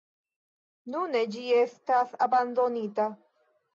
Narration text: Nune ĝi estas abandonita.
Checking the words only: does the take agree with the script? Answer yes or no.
yes